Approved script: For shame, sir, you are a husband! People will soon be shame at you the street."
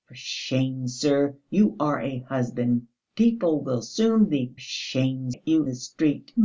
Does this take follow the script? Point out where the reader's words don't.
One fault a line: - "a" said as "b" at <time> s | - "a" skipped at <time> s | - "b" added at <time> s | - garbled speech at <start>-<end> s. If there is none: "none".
none